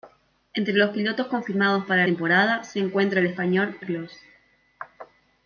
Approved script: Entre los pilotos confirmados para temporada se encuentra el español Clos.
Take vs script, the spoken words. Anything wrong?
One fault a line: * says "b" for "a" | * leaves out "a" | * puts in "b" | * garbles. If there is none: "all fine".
all fine